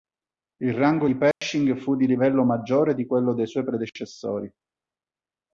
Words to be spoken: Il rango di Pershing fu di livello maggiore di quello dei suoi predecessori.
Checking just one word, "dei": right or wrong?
right